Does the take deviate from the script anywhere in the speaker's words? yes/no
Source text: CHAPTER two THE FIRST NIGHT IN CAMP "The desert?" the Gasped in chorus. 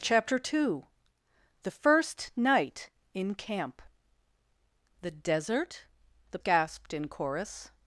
no